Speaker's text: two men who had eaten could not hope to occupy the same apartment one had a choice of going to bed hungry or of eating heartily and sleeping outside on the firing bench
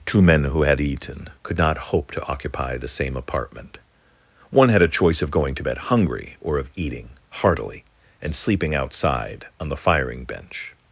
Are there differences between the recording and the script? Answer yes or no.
no